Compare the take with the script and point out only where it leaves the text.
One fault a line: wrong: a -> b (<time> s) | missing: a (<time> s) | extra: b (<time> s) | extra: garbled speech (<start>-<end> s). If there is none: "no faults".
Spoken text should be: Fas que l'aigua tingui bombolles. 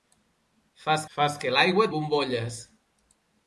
extra: fas (1.2 s)
missing: tingui (1.9 s)